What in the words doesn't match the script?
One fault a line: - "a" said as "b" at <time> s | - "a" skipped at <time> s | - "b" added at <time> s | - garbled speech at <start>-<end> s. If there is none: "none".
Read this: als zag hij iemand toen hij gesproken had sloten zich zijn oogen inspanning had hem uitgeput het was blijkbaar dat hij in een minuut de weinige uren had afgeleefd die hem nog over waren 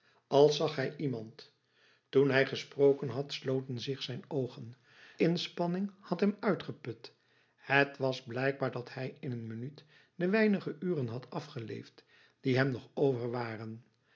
none